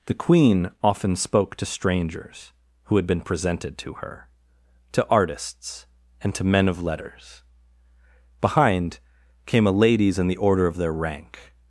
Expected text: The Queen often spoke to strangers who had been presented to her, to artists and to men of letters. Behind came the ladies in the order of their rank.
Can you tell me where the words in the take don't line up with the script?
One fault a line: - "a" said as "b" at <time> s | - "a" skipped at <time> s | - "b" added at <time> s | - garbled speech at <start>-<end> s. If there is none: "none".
- "the" said as "a" at 9.7 s